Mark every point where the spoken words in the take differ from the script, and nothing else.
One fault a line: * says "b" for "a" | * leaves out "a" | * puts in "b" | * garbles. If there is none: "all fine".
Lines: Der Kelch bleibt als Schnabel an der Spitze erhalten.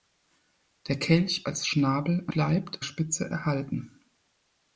* leaves out "bleibt"
* says "bleibt" for "der"